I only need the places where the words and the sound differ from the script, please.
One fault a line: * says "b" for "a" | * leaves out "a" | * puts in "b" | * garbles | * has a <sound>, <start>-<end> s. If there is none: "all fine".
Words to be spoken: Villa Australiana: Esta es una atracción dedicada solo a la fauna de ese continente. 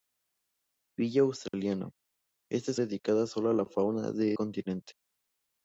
* has a dropout, 1.5-1.5 s
* leaves out "una atracción"
* leaves out "ese"